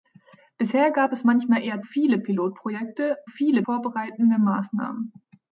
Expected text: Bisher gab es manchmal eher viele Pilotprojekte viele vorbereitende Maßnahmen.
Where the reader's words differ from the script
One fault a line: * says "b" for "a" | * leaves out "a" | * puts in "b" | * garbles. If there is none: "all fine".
all fine